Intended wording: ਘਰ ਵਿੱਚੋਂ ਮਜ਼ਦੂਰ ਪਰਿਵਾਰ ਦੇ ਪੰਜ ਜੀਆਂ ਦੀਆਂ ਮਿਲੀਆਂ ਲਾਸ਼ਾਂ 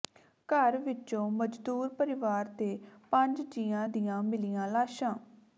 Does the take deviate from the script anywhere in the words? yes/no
no